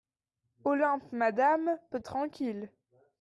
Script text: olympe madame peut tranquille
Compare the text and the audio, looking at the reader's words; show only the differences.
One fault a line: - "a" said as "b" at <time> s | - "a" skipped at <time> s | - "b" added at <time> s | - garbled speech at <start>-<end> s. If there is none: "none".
none